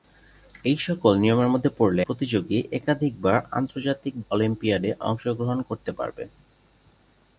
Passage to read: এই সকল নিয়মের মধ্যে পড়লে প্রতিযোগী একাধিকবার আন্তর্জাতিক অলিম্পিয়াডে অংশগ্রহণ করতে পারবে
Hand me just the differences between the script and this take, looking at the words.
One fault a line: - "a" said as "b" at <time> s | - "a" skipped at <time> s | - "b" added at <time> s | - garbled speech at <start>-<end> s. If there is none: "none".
none